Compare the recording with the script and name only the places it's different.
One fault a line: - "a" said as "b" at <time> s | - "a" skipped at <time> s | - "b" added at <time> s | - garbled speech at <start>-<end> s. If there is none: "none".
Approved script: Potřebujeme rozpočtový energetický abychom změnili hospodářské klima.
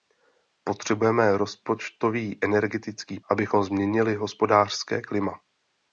none